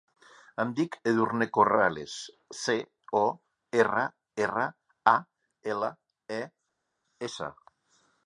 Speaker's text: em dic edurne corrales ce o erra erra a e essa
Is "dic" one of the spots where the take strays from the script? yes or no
no